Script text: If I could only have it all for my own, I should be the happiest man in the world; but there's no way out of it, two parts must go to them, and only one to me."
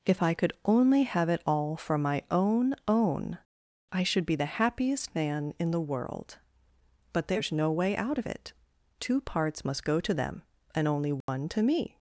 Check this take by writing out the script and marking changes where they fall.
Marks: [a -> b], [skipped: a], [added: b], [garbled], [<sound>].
If I could only have it all for my own, [added: own] I should be the happiest man in the world; but there's no way out of it, two parts must go to them, and only one [dropout] to me."